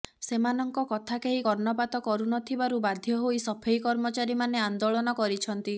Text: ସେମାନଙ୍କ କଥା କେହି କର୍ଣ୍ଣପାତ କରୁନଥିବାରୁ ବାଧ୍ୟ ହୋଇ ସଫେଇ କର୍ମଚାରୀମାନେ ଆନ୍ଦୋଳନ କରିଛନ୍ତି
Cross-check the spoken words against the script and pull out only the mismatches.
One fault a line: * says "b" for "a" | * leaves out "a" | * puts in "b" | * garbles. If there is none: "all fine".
all fine